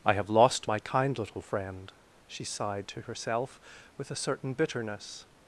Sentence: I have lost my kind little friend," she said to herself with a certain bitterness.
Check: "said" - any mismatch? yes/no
yes